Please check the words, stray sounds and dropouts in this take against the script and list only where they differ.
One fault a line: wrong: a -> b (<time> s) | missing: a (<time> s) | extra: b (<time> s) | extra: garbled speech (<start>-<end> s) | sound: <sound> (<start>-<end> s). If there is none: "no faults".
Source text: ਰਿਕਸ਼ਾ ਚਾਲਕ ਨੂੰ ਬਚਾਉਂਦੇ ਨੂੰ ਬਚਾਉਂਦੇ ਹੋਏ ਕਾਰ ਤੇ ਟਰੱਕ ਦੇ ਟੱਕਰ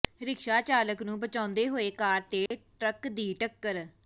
missing: ਨੂੰ ਬਚਾਉਂਦੇ (1.7 s)
sound: dropout (2.5-2.5 s)
wrong: ਦੇ -> ਦੀ (3.1 s)